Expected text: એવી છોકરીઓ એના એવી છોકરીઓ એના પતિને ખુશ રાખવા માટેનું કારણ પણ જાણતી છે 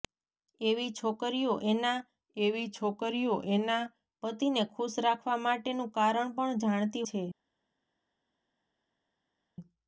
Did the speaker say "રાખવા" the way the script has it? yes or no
yes